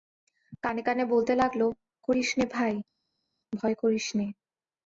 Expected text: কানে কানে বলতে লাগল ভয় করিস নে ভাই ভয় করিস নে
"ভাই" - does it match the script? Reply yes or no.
yes